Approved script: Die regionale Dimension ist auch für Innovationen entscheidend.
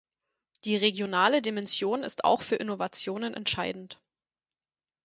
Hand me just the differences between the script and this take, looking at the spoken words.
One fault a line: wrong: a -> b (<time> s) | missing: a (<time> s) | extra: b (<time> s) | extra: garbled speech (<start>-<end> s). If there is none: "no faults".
no faults